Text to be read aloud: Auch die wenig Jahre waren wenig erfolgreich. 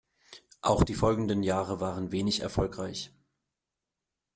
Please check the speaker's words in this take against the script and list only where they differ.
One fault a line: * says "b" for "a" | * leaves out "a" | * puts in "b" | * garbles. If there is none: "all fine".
* says "folgenden" for "wenig"